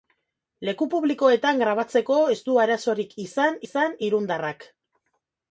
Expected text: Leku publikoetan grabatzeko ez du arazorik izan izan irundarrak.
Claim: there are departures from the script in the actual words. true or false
false